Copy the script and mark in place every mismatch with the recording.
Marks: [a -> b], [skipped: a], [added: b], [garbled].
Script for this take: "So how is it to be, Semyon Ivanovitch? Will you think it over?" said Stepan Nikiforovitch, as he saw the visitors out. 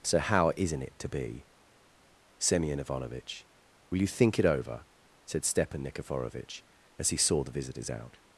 "So how [is -> isn't] it to be, Semyon Ivanovitch? Will you think it over?" said Stepan Nikiforovitch, as he saw the visitors out.